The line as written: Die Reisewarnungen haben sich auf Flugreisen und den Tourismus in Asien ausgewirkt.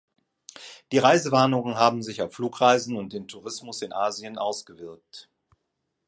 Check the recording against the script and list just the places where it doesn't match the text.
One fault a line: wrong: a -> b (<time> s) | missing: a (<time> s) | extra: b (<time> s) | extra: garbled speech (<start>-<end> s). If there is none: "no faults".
no faults